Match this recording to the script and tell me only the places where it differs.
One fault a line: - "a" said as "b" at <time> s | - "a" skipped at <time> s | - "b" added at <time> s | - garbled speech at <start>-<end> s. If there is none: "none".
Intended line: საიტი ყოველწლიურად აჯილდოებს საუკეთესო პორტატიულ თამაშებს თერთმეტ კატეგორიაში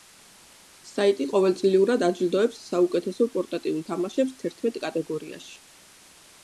none